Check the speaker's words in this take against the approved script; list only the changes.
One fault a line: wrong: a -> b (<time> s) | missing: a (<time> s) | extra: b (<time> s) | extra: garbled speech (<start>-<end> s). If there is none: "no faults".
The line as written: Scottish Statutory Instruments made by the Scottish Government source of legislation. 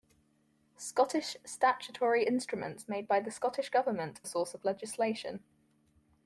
no faults